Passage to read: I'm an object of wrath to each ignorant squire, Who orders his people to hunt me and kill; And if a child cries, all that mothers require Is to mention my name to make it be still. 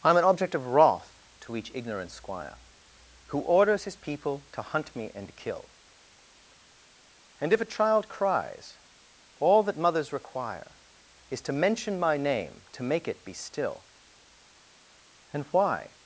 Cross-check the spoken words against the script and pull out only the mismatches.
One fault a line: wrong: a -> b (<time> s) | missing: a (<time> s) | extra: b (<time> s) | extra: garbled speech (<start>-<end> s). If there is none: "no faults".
extra: And why (15.3 s)